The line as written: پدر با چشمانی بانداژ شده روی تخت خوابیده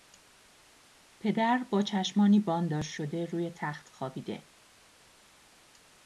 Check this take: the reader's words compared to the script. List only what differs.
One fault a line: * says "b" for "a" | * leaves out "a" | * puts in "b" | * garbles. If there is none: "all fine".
all fine